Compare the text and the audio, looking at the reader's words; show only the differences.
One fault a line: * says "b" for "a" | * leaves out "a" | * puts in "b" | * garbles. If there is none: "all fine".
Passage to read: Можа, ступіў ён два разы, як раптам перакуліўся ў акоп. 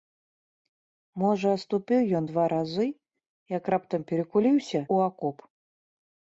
all fine